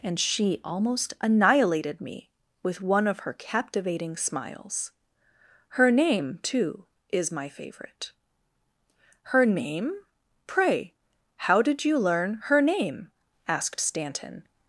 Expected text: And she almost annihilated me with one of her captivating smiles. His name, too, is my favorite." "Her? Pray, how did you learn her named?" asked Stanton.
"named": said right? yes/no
no